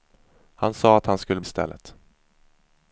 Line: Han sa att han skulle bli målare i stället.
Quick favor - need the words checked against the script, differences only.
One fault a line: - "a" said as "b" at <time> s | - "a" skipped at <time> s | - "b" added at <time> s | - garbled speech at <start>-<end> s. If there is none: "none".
- "bli målare" skipped at 1.4 s